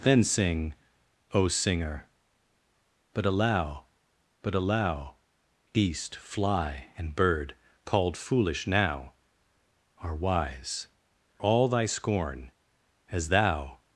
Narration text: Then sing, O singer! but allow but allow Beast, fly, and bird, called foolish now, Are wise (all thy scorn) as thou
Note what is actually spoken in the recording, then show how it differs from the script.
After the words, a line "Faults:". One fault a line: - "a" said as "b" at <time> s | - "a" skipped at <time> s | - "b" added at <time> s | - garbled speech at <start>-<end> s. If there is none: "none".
Then sing, O singer! but allow but allow Beast, fly, and bird, called foolish now, Are wise (all thy scorn) as thou
Faults:
none